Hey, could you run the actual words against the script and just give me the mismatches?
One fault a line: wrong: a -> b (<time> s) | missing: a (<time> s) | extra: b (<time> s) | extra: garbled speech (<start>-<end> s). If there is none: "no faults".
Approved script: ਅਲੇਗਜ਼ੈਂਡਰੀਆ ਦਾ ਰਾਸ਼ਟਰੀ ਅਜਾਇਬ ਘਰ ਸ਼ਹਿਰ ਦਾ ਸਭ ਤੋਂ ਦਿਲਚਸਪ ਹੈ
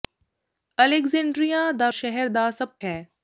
missing: ਰਾਸ਼ਟਰੀ ਅਜਾਇਬ ਘਰ (1.9 s)
missing: ਤੋਂ ਦਿਲਚਸਪ (2.7 s)